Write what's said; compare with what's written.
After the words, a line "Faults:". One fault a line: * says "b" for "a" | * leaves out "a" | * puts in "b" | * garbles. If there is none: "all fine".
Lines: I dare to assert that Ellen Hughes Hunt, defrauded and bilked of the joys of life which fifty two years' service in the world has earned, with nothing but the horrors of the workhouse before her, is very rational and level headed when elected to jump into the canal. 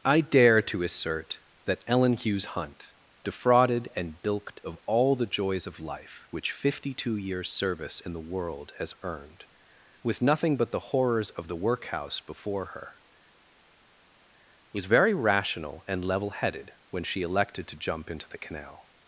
I dare to assert that Ellen Hughes Hunt, defrauded and bilked of all the joys of life which fifty two years' service in the world has earned, with nothing but the horrors of the workhouse before her, was very rational and level headed when she elected to jump into the canal.
Faults:
* puts in "all"
* says "was" for "is"
* puts in "she"